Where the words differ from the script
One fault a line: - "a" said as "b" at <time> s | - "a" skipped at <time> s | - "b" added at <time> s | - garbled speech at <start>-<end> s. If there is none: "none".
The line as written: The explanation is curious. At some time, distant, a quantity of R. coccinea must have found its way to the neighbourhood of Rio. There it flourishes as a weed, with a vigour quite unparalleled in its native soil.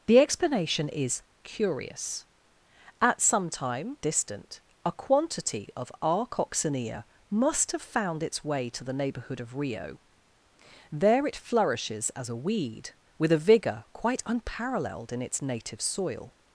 none